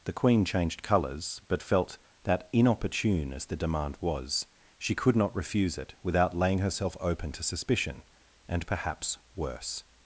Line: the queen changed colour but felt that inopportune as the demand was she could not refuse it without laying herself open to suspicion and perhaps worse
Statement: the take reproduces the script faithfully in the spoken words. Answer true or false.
false